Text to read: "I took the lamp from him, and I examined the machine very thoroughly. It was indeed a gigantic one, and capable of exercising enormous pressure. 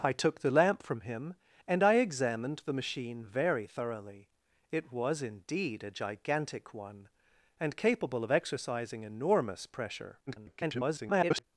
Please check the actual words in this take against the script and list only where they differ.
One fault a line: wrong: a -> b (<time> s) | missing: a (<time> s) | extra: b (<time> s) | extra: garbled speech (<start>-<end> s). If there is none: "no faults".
extra: garbled speech (10.3-11.4 s)